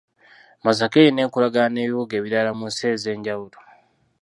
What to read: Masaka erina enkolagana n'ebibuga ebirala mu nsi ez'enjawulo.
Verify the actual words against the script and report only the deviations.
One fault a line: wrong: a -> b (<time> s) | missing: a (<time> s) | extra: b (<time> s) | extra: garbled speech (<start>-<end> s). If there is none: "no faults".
no faults